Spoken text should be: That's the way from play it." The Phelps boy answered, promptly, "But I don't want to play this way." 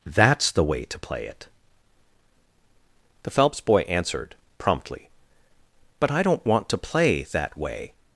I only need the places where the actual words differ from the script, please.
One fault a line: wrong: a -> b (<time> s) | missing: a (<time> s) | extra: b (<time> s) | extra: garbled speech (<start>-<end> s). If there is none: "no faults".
wrong: from -> to (0.8 s)
wrong: this -> that (7.3 s)